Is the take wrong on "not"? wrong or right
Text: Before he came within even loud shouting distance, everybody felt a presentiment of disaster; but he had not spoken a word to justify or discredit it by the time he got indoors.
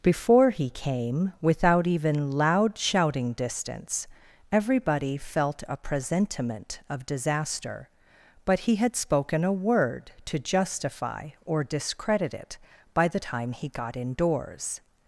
wrong